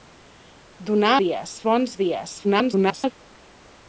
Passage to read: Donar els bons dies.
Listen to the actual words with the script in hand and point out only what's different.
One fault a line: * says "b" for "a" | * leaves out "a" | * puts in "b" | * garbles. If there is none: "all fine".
* says "dies" for "els"
* garbles